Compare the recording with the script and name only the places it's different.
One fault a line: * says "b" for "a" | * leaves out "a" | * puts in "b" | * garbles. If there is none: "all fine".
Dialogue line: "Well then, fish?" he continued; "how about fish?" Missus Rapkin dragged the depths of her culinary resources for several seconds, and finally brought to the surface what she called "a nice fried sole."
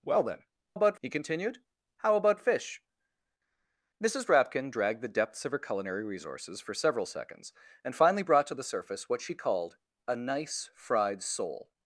* says "about" for "fish"